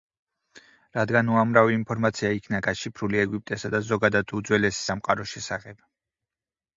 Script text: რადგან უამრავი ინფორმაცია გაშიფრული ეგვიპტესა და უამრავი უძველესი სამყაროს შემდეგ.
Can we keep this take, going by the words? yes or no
no